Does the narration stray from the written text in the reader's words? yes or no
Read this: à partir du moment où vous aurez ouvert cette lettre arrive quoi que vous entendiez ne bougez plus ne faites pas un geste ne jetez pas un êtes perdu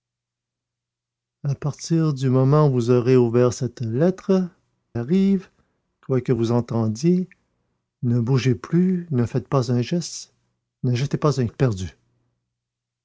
no